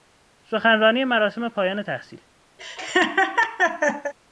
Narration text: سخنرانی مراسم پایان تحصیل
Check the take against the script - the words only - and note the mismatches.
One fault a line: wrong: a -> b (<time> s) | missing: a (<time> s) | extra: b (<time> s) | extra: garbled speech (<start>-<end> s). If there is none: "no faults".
no faults